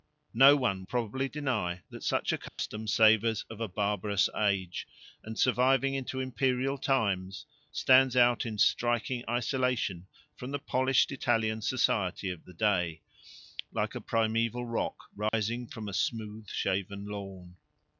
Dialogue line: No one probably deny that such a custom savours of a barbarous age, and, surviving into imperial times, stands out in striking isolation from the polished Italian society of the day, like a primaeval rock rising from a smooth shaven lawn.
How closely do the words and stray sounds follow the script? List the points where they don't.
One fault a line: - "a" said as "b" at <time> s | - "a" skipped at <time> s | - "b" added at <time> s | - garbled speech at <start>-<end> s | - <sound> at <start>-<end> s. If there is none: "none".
- dropout at 2.5-2.6 s
- dropout at 15.3-15.3 s